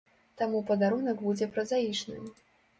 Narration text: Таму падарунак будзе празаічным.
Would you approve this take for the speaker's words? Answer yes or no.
yes